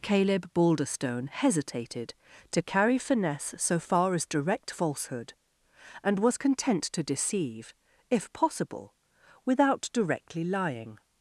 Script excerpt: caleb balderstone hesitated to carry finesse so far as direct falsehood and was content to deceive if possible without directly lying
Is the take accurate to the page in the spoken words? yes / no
yes